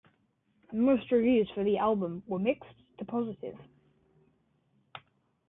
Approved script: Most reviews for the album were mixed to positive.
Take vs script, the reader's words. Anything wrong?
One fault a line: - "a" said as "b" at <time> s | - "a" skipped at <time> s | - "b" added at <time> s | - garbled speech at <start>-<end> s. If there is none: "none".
none